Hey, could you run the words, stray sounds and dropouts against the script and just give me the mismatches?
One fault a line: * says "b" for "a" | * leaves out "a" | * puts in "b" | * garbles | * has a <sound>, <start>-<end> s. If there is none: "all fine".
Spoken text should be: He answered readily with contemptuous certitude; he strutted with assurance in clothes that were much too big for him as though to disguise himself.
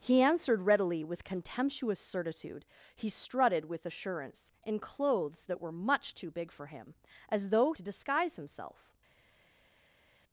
all fine